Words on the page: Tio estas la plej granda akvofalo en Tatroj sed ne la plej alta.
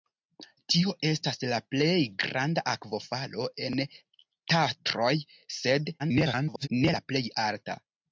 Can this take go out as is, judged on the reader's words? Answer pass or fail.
fail